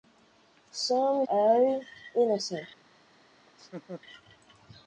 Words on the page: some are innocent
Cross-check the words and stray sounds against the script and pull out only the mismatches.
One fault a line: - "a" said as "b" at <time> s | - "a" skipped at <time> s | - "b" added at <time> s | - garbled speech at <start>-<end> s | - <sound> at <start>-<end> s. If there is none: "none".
- laugh at 3.5-4.0 s